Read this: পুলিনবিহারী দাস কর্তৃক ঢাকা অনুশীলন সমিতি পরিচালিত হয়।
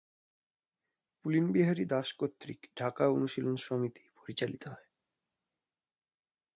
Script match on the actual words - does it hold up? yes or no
yes